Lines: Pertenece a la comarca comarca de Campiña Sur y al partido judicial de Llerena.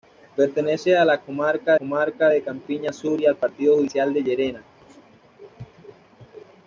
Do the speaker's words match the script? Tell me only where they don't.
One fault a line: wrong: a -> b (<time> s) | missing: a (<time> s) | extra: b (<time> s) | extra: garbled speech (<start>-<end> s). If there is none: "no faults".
no faults